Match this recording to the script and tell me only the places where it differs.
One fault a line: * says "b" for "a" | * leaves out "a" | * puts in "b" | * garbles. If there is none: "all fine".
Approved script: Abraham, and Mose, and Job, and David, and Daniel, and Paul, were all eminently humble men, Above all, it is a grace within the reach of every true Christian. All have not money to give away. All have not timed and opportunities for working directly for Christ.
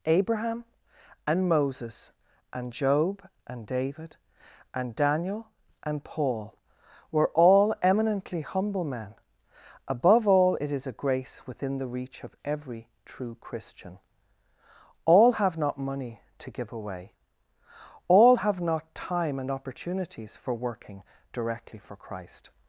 * says "Moses" for "Mose"
* says "time" for "timed"